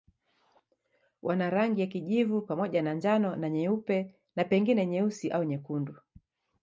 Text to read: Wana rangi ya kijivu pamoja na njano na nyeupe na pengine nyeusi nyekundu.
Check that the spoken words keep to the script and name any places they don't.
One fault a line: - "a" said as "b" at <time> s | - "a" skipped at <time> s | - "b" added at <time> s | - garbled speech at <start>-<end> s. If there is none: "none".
- "au" added at 5.3 s